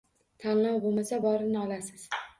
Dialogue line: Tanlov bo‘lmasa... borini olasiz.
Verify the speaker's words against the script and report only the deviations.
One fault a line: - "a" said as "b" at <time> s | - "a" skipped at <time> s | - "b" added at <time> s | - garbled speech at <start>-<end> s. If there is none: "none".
none